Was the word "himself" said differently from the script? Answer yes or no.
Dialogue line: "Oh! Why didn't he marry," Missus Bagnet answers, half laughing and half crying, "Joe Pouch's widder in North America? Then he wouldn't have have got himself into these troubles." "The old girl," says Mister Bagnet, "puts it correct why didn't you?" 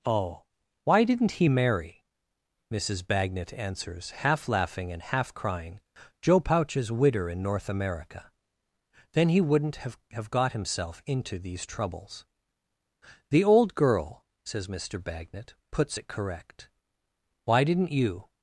no